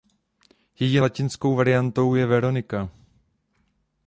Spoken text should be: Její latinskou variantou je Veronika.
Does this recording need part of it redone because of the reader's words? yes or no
no